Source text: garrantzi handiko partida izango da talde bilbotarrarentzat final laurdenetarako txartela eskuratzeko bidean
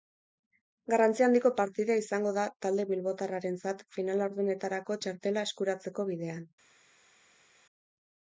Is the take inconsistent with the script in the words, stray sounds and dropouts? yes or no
no